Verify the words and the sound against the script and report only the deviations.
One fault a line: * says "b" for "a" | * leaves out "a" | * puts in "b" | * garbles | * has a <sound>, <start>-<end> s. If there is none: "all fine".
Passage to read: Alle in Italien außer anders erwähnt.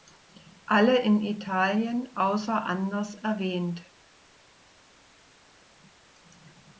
all fine